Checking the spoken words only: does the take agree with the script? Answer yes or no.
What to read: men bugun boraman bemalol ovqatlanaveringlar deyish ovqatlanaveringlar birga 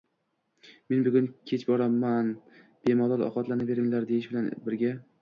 no